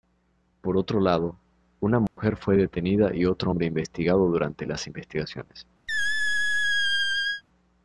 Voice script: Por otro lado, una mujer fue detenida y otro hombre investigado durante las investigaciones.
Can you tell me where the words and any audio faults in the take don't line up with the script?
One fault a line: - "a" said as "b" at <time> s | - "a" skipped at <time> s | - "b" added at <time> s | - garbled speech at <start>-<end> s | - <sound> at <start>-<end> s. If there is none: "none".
- dropout at 2.1-2.2 s
- squeak at 5.9-7.4 s